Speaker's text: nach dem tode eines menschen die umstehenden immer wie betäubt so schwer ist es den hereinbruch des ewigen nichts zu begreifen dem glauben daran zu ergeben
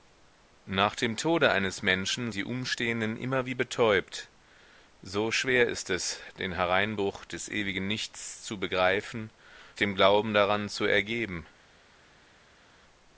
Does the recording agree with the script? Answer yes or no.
yes